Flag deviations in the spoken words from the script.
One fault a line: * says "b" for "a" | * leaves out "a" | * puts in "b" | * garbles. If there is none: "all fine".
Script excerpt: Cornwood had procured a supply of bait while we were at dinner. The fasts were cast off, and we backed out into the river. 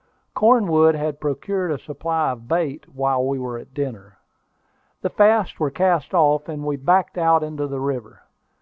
all fine